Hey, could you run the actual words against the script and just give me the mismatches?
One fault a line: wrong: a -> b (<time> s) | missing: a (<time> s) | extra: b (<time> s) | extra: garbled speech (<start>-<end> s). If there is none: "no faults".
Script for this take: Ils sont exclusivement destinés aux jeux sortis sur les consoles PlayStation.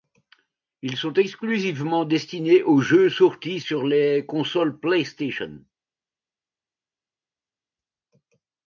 no faults